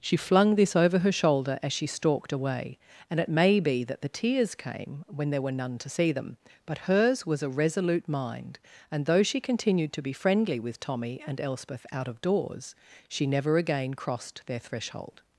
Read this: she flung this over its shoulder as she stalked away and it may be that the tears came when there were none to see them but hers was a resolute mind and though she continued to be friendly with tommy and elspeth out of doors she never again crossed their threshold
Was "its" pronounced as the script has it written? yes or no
no